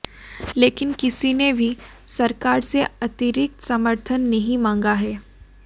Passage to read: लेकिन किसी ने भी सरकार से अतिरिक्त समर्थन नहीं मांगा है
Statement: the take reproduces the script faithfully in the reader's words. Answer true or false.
true